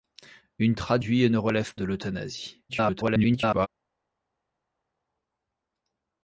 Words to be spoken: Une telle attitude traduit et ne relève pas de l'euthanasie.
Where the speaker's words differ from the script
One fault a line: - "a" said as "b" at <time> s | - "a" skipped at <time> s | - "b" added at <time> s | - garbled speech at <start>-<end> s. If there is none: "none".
- "telle attitude" skipped at 0.8 s
- "pas" skipped at 1.8 s
- garbled speech at 2.7-3.7 s